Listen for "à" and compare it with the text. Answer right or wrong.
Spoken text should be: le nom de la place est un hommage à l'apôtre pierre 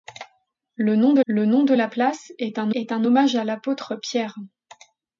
right